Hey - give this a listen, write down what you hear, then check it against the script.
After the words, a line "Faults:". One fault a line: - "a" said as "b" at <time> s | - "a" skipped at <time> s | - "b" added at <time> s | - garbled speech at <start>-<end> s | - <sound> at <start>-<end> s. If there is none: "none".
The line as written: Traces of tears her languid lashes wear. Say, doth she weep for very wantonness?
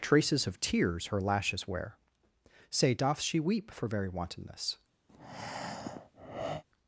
Traces of tears her lashes wear. Say, doth she weep for very wantonness?
Faults:
- "languid" skipped at 1.2 s
- breath at 5.1-6.6 s